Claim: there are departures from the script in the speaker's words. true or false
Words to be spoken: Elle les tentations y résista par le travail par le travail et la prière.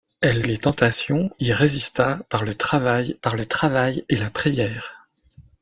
false